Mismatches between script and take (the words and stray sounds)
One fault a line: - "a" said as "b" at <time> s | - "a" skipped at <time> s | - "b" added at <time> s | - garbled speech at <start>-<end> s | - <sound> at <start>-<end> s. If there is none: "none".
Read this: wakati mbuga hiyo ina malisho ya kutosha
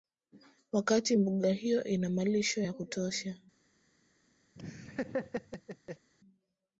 - laugh at 4.5-6.1 s